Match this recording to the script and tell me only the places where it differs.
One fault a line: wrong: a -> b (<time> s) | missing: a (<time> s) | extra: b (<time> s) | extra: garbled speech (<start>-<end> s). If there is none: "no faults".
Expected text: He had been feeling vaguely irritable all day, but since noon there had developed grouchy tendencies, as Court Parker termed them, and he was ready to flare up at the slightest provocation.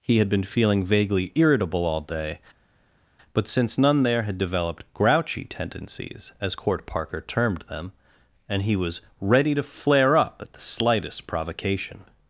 wrong: noon -> none (3.8 s)